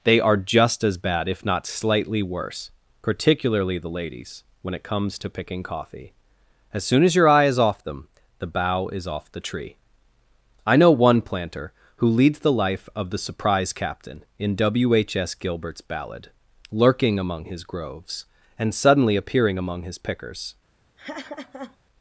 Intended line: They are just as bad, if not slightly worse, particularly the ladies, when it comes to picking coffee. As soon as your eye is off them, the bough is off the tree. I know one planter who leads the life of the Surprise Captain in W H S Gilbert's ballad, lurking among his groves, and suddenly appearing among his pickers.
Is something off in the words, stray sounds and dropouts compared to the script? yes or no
yes